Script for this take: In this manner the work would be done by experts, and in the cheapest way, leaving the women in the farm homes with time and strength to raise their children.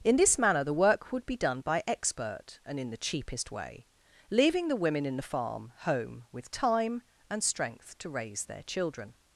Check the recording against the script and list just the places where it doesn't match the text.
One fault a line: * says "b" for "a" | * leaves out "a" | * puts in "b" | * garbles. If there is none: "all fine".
* says "expert" for "experts"
* says "home" for "homes"